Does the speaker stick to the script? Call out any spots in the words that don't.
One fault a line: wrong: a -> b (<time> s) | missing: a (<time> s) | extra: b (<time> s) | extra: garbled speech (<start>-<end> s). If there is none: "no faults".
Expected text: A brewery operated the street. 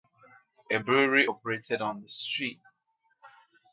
extra: on (1.8 s)